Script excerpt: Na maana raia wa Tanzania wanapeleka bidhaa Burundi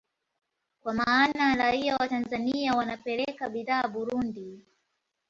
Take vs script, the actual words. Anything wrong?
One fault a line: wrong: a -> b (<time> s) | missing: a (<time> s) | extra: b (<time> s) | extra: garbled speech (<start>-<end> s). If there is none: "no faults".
wrong: Na -> Kwa (0.8 s)